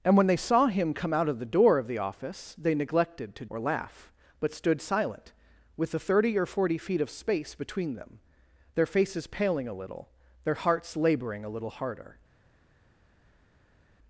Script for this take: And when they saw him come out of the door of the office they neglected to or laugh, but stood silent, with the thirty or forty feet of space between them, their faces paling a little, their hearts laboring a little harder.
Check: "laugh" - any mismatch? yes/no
no